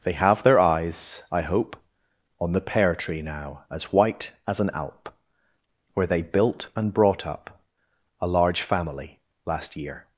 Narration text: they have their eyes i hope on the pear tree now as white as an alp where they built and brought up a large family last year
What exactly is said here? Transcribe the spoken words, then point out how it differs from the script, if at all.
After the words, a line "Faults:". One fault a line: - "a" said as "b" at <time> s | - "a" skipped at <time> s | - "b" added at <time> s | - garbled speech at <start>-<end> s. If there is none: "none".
they have their eyes i hope on the pear tree now as white as an alp where they built and brought up a large family last year
Faults:
none